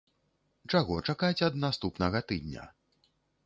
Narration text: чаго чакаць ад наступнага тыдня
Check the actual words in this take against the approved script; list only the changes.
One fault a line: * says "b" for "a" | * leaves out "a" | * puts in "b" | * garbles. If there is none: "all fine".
all fine